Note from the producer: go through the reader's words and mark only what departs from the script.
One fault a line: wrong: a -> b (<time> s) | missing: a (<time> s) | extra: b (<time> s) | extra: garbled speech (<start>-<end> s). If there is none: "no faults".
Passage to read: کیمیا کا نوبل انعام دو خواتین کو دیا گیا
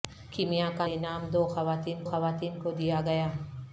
missing: نوبل (0.8 s)
extra: خواتین (2.1 s)